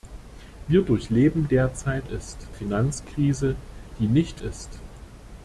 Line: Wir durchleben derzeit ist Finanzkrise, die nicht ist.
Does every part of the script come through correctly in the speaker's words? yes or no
yes